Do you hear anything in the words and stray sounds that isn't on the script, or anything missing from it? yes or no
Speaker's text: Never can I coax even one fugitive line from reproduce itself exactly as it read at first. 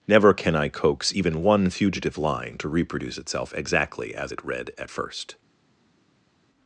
yes